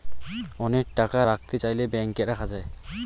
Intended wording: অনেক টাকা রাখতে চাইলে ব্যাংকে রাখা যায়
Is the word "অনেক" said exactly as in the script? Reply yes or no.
yes